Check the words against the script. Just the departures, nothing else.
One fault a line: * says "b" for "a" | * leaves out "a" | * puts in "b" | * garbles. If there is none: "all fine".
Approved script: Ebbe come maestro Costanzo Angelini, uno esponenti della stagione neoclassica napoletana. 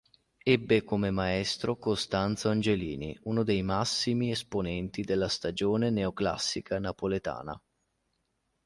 * puts in "dei massimi"